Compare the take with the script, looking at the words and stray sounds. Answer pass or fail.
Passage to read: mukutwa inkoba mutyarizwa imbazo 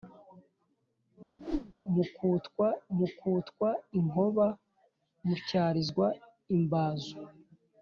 fail